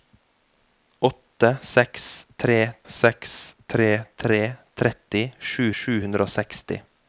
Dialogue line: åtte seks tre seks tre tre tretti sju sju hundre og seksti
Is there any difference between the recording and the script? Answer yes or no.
no